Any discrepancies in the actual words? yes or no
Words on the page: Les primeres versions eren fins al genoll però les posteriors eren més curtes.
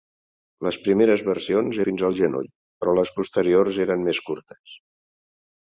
yes